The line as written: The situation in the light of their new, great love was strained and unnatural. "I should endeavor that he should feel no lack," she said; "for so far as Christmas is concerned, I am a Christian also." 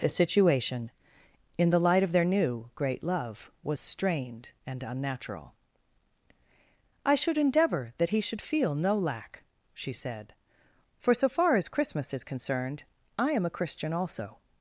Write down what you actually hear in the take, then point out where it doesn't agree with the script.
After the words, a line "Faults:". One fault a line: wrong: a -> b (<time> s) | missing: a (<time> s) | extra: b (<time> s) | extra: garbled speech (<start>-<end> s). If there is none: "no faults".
The situation in the light of their new, great love was strained and unnatural. "I should endeavor that he should feel no lack," she said; "for so far as Christmas is concerned, I am a Christian also."
Faults:
no faults